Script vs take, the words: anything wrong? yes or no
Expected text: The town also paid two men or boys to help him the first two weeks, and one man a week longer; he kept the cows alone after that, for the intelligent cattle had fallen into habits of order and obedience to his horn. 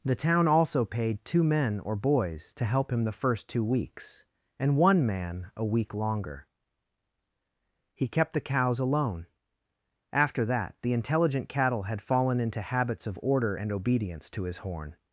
yes